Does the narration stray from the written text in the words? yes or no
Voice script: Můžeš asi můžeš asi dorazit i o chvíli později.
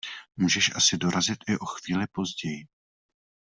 yes